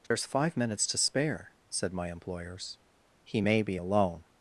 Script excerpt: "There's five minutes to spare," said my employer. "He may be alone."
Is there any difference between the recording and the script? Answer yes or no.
yes